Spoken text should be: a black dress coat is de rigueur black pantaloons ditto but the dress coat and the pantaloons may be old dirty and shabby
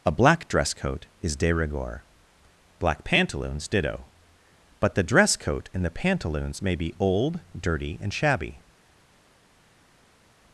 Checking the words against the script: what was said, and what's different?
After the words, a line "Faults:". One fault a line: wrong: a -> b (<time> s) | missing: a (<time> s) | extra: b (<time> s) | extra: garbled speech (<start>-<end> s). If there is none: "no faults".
a black dress coat is de rigueur black pantaloons ditto but the dress coat and the pantaloons may be old dirty and shabby
Faults:
no faults